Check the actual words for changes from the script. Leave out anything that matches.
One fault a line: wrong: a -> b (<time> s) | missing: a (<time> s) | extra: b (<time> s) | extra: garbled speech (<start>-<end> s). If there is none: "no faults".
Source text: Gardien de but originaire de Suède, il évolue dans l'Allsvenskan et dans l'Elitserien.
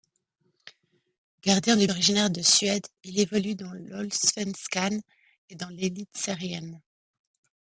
missing: but (1.9 s)